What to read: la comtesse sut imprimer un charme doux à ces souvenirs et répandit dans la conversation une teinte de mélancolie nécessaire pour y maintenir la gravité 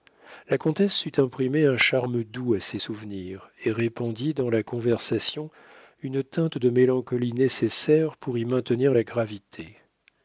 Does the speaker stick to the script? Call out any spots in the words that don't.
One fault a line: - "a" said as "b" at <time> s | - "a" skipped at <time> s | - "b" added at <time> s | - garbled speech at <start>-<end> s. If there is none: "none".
none